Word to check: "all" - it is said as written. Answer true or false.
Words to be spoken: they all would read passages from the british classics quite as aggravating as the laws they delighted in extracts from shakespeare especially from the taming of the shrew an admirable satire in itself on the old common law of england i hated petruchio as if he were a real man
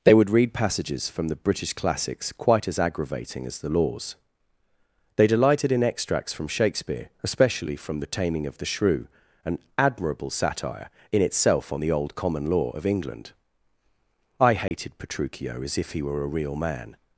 false